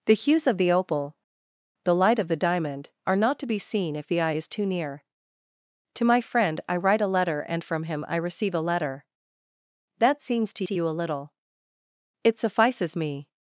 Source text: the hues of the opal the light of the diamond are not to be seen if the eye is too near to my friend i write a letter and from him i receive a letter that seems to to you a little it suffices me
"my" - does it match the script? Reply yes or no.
yes